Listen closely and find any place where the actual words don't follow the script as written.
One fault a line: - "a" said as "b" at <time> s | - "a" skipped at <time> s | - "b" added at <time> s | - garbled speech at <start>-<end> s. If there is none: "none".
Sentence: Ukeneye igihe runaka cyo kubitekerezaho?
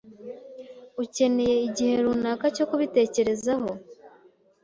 none